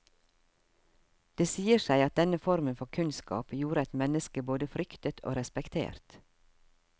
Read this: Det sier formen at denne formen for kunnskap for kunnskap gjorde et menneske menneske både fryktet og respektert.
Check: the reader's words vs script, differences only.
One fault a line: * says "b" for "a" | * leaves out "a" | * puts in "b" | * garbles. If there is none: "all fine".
* says "seg" for "formen"
* leaves out "for kunnskap"
* leaves out "menneske"